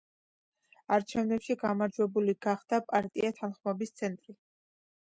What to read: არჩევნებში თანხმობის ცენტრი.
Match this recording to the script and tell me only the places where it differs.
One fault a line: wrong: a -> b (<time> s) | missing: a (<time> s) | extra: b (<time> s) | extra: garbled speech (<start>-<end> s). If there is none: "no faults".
extra: გამარჯვებული გახდა პარტია (1.6 s)